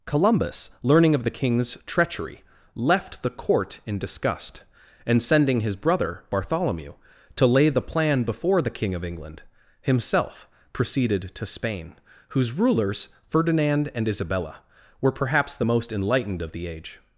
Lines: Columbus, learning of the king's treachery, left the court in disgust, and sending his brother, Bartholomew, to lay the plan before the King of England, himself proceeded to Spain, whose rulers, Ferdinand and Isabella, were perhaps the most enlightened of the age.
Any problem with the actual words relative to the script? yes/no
no